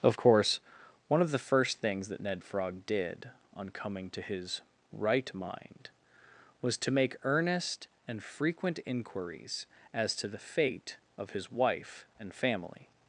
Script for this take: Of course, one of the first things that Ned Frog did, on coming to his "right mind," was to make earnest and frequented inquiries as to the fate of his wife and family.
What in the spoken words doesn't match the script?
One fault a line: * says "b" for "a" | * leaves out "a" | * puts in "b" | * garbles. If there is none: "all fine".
* says "frequent" for "frequented"